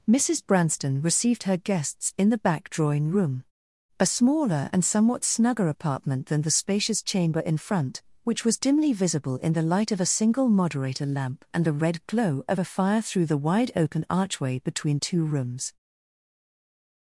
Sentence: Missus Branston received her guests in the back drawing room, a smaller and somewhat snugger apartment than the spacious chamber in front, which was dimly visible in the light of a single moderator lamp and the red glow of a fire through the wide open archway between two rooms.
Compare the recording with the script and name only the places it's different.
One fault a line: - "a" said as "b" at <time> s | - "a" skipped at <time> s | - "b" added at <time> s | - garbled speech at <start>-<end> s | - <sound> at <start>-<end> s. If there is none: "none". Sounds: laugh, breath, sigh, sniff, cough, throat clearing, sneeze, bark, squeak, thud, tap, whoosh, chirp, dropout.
none